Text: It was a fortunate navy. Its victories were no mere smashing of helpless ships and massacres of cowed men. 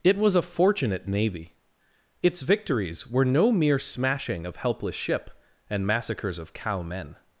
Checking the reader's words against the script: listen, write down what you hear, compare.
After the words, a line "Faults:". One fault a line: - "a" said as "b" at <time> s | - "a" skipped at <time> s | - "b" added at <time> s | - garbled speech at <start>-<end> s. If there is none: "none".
It was a fortunate navy. Its victories were no mere smashing of helpless ship and massacres of cow men.
Faults:
- "ships" said as "ship" at 5.0 s
- "cowed" said as "cow" at 6.5 s